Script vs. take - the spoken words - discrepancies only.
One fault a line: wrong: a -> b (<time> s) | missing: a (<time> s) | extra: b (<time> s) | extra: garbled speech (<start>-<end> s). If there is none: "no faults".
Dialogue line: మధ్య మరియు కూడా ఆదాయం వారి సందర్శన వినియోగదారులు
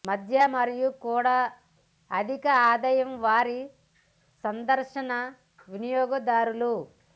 extra: అధిక (2.1 s)